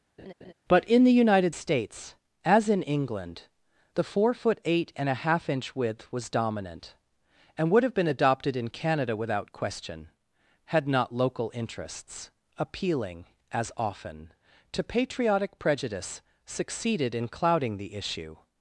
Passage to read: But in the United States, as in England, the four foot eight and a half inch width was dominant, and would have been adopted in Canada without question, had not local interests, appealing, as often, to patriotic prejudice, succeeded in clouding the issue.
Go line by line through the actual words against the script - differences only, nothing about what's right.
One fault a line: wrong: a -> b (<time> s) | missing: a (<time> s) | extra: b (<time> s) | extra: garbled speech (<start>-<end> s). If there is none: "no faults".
no faults